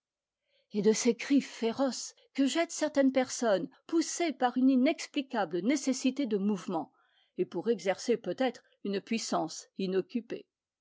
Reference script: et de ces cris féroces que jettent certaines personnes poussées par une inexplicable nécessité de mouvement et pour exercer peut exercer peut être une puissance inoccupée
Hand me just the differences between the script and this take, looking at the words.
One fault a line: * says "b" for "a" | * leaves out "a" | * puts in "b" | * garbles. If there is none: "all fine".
* leaves out "exercer peut"